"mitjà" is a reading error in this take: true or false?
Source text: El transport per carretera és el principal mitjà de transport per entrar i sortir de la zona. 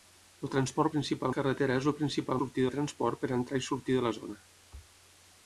true